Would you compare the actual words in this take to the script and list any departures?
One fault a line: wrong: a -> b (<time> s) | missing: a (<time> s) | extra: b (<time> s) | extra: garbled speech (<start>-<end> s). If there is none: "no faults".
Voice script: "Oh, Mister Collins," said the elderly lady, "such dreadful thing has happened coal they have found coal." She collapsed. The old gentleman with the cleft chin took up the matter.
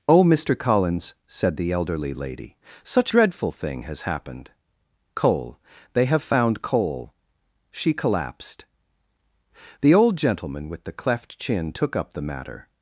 no faults